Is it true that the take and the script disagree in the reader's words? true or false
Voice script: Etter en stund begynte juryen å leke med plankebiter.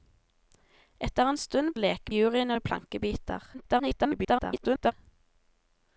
true